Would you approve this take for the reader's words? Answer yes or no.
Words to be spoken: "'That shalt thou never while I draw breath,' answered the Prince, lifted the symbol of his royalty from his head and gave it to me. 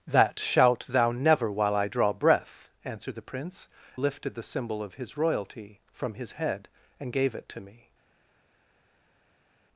yes